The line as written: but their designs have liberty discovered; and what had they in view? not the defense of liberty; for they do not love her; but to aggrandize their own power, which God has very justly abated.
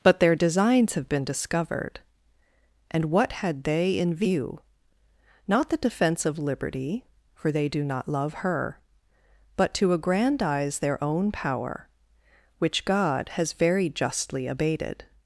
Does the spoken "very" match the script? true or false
true